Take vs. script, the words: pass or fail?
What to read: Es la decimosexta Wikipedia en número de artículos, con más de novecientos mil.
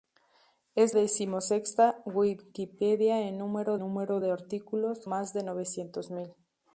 fail